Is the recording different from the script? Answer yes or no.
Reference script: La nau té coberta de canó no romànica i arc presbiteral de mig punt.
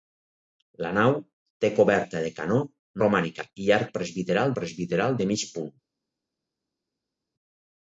yes